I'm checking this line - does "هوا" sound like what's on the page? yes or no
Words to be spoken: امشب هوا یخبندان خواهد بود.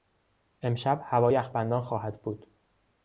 yes